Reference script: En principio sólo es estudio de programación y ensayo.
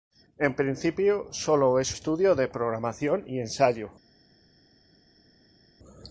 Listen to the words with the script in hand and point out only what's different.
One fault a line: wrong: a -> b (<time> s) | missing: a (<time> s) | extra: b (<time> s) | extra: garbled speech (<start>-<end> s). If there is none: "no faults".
no faults